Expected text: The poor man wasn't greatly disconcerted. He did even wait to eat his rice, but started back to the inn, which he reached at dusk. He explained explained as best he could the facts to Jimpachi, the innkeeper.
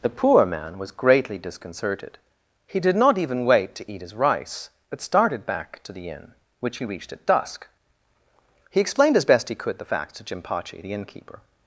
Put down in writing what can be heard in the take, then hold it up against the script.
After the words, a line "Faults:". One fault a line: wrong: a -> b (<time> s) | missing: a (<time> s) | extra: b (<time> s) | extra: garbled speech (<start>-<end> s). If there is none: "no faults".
The poor man was greatly disconcerted. He did not even wait to eat his rice, but started back to the inn, which he reached at dusk. He explained as best he could the facts to Jimpachi, the innkeeper.
Faults:
wrong: wasn't -> was (0.8 s)
extra: not (3.0 s)
missing: explained (9.2 s)